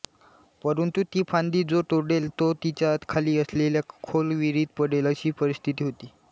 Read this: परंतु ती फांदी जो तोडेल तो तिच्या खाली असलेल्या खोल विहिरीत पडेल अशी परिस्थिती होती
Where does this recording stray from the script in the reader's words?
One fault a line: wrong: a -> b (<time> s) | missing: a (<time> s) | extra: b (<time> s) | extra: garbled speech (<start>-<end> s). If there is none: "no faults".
no faults